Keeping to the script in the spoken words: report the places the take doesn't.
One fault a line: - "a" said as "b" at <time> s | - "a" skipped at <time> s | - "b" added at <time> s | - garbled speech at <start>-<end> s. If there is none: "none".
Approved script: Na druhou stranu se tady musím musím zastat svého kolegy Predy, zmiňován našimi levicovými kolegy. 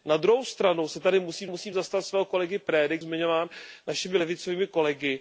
none